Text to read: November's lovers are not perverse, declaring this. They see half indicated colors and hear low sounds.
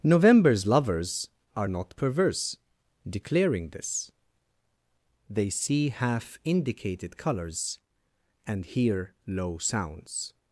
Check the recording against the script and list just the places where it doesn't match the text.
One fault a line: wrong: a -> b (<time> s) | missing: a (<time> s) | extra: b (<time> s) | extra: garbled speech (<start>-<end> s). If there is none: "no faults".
no faults